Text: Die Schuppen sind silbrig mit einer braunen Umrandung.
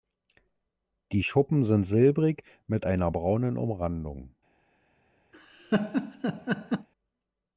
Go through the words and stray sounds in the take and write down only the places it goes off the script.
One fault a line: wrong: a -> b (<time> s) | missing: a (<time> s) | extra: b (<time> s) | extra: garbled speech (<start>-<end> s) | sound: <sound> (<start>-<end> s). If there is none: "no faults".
sound: laugh (5.3-6.9 s)